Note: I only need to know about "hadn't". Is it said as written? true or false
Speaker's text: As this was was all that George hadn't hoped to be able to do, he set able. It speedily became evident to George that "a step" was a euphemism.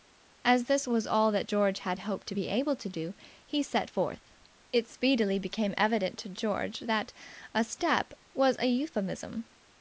false